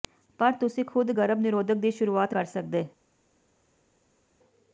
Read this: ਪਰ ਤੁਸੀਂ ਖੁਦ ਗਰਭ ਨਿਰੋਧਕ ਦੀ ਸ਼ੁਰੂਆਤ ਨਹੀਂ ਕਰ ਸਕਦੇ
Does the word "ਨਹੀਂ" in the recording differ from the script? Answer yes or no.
yes